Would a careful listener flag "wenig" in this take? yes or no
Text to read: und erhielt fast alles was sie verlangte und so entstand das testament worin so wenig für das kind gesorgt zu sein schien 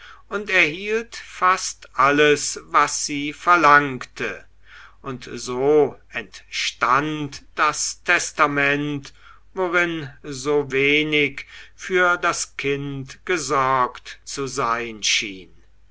no